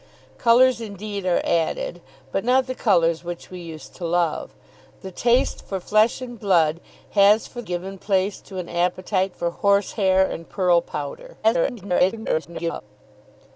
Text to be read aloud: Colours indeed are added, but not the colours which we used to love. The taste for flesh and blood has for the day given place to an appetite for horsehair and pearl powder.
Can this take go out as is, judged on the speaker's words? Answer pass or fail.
fail